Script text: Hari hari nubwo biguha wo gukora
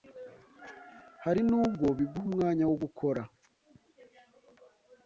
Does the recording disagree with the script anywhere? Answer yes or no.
yes